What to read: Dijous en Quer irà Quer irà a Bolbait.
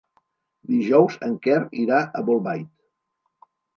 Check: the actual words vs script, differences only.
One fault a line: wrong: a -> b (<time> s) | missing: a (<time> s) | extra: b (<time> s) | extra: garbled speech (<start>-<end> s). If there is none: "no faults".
missing: Quer irà (2.0 s)